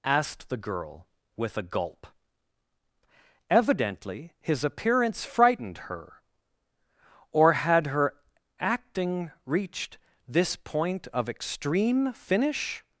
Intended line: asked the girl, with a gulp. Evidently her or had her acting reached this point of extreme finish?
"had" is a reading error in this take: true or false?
false